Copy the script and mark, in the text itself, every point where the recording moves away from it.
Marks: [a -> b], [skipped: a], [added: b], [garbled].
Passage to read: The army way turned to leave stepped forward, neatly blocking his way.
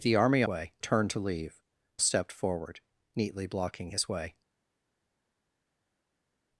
The army way turned to leave stepped forward, neatly blocking his way.